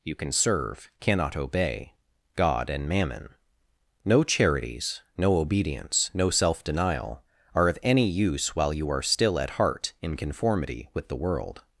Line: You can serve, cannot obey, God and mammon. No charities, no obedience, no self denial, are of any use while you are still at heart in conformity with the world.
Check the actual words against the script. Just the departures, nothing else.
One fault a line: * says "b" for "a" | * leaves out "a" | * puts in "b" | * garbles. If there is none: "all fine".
all fine